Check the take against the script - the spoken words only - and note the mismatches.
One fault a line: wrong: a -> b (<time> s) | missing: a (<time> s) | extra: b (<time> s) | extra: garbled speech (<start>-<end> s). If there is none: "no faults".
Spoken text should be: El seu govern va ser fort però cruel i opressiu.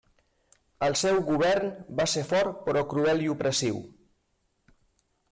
no faults